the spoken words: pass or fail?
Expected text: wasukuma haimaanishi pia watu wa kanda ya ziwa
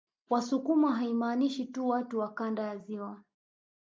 fail